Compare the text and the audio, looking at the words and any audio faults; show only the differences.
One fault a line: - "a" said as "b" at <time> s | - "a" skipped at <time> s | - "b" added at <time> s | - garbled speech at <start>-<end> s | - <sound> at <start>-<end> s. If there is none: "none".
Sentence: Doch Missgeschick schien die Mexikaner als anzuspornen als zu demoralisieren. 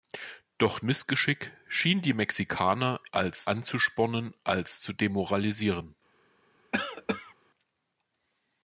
- cough at 6.7-7.3 s